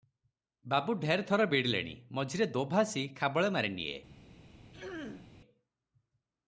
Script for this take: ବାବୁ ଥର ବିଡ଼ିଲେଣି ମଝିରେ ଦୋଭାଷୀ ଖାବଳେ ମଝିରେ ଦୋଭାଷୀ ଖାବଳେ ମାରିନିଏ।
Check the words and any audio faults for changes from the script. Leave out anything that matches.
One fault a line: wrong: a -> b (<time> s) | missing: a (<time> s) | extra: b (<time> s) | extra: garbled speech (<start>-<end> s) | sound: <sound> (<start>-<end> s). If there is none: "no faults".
extra: ଢେର (0.9 s)
missing: ମଝିରେ ଦୋଭାଷୀ ଖାବଳେ (3.5 s)
sound: throat clearing (4.7-5.3 s)